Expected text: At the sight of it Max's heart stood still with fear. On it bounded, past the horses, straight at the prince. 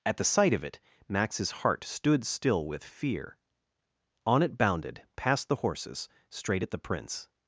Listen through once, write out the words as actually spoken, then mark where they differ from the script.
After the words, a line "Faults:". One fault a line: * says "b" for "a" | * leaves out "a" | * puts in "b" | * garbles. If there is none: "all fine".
At the sight of it Max's heart stood still with fear. On it bounded, past the horses, straight at the prince.
Faults:
all fine